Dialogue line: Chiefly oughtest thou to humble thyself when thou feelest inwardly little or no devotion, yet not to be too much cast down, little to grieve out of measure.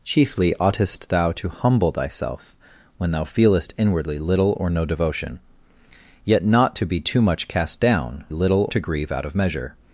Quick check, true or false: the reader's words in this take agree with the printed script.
true